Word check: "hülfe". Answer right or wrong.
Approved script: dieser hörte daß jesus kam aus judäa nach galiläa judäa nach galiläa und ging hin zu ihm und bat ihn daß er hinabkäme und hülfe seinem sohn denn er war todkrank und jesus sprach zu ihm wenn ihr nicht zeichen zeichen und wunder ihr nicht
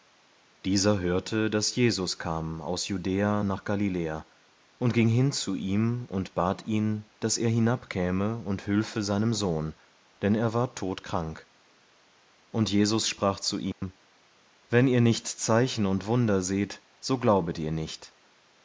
right